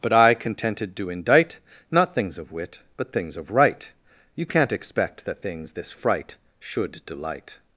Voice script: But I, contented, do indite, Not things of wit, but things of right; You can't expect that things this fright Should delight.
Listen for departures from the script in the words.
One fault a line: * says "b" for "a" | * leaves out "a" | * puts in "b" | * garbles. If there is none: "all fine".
all fine